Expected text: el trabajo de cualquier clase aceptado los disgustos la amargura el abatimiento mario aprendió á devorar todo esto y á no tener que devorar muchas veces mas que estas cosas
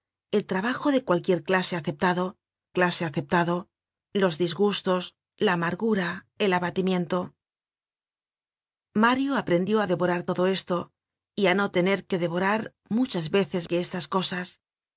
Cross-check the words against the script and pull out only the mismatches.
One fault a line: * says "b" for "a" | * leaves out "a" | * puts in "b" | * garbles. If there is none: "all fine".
* puts in "clase aceptado"
* leaves out "mas"